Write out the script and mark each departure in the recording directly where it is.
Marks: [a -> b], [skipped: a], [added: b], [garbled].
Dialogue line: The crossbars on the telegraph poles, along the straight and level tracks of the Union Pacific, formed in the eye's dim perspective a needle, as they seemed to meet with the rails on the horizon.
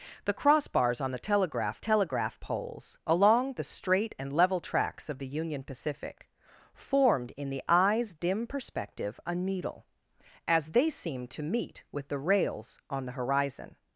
The crossbars on the telegraph [added: telegraph] poles, along the straight and level tracks of the Union Pacific, formed in the eye's dim perspective a needle, as they seemed to meet with the rails on the horizon.